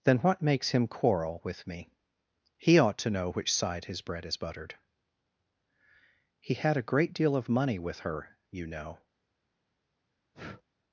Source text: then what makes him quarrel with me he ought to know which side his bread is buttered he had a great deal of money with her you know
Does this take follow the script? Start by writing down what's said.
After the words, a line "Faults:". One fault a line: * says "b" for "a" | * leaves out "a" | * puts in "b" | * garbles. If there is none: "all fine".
then what makes him quarrel with me he ought to know which side his bread is buttered he had a great deal of money with her you know
Faults:
all fine